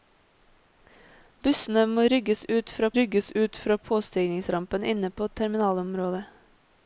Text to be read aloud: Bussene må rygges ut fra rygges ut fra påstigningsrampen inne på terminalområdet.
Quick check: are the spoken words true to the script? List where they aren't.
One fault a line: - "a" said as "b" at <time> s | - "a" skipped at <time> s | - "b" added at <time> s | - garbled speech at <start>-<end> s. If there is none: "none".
none